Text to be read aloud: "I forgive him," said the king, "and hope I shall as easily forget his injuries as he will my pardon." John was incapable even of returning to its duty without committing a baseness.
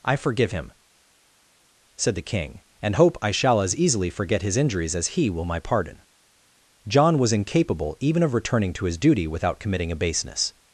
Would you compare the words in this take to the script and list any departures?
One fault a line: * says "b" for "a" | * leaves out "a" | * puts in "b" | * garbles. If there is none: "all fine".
* says "his" for "its"